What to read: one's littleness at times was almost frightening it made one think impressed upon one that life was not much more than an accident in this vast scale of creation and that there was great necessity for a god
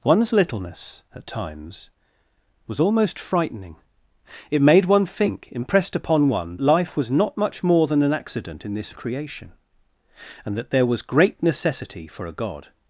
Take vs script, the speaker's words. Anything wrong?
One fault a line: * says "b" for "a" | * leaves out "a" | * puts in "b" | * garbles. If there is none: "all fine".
* leaves out "that"
* leaves out "vast scale"